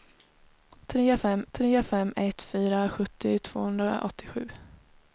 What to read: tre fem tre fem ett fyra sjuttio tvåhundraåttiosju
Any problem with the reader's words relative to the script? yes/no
no